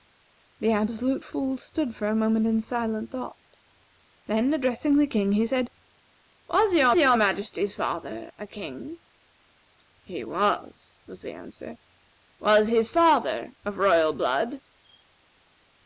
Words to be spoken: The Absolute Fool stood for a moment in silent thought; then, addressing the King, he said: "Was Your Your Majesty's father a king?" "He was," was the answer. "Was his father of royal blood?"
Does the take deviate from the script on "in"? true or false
false